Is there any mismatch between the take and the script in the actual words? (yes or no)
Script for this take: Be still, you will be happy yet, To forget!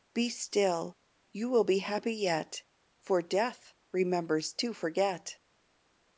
yes